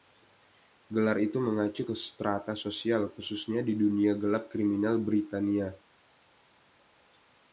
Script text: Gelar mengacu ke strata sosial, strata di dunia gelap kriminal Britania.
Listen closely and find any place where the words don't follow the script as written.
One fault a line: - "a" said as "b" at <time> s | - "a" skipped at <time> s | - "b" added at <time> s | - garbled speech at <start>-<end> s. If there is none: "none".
- "itu" added at 1.2 s
- "strata" said as "khususnya" at 3.1 s